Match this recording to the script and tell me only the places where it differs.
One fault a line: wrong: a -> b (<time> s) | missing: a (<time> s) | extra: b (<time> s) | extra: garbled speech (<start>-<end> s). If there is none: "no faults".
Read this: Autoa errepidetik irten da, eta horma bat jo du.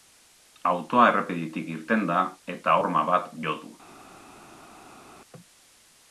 no faults